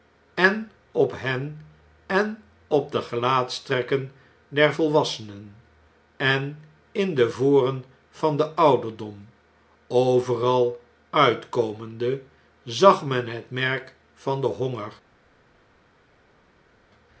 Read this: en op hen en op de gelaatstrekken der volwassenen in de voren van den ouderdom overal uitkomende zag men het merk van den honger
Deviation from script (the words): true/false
true